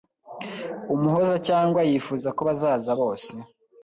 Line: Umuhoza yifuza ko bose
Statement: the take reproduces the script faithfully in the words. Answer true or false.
false